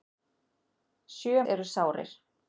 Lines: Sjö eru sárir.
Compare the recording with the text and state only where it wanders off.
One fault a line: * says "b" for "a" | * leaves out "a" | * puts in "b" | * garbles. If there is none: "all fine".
all fine